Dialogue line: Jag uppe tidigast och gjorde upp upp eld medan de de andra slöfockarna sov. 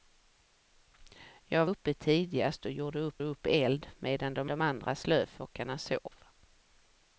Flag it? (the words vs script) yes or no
no